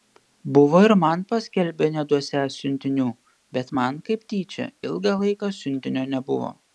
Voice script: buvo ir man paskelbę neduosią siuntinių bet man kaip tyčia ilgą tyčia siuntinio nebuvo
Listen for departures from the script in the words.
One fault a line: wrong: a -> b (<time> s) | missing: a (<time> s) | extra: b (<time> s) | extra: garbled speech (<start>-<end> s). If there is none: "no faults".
wrong: tyčia -> laiką (5.2 s)